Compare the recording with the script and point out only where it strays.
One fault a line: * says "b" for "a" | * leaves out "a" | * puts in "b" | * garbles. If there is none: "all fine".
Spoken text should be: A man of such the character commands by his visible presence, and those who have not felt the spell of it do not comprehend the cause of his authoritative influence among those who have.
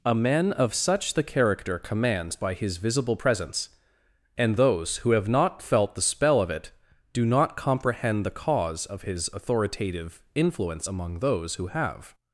all fine